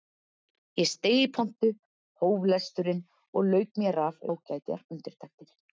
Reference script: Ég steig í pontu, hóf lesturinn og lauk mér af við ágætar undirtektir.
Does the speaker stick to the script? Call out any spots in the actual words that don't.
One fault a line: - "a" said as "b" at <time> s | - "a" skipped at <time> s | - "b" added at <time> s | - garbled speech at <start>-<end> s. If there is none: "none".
- "við" skipped at 4.2 s